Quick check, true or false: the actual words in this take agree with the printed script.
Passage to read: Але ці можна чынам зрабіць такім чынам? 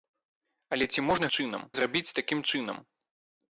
true